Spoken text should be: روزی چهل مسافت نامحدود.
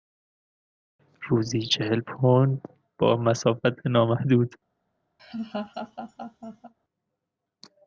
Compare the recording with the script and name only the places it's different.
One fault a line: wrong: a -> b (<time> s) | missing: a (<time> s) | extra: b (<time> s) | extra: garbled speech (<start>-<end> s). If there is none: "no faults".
extra: پوند با (2.0 s)